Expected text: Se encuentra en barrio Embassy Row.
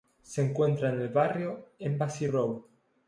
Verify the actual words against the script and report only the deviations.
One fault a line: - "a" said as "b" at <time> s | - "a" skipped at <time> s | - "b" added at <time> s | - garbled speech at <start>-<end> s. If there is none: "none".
- "el" added at 1.0 s